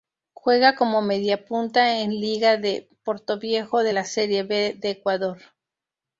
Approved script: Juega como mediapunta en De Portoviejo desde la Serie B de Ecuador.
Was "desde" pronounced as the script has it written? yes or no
no